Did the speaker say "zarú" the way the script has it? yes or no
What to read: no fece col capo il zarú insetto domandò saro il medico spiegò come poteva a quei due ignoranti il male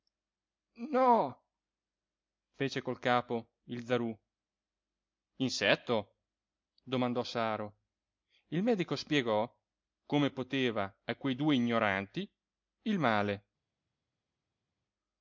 yes